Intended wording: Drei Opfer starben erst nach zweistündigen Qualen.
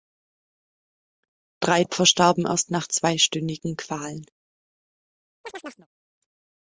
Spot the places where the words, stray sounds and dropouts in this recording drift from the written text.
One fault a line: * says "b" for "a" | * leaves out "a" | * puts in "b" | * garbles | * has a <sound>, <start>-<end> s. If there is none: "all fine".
* has a chirp, 5.4-5.9 s